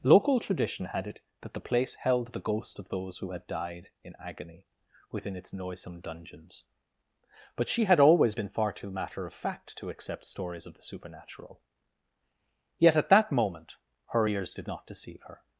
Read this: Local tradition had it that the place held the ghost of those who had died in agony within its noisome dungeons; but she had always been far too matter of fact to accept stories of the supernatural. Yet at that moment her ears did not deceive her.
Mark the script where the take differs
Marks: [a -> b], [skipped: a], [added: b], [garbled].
Local tradition had it that the place held the ghost of those who had died in agony within its noisome dungeons; but she had always been far too matter of fact to accept stories of the supernatural. Yet at that moment her ears did not deceive her.